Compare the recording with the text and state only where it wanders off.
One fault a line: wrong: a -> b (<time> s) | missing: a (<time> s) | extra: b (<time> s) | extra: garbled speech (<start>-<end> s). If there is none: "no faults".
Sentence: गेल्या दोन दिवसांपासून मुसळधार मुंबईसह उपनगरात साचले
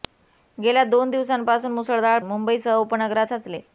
no faults